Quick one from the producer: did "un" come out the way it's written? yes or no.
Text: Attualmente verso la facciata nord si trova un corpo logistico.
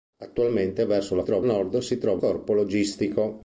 no